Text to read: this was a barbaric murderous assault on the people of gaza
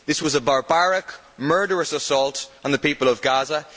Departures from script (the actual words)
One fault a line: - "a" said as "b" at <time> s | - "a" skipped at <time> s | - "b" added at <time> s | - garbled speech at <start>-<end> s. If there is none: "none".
none